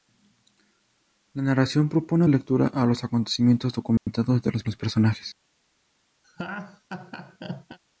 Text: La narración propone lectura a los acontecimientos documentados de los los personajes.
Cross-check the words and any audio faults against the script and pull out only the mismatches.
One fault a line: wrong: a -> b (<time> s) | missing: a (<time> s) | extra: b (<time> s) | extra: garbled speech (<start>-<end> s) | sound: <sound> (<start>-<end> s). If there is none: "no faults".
sound: dropout (4.0-4.1 s)
sound: laugh (6.2-7.8 s)